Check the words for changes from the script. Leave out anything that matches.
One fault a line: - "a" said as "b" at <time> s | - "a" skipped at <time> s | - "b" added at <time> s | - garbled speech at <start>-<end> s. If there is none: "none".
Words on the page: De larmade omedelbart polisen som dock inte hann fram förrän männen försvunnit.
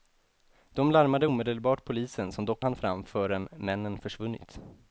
- "inte" skipped at 2.6 s